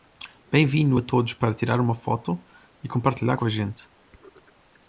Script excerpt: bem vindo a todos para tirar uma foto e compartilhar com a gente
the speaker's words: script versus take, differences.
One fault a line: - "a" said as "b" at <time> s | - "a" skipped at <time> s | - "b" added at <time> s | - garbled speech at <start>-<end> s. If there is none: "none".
none